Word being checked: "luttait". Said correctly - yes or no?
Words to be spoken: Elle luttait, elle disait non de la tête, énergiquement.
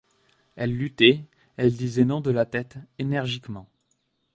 yes